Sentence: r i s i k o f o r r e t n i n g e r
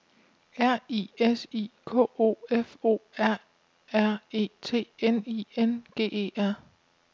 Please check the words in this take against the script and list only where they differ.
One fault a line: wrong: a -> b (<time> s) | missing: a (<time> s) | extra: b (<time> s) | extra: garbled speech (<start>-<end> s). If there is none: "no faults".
no faults